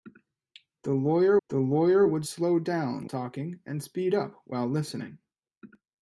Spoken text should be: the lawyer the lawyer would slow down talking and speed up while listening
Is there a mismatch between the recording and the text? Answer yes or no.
no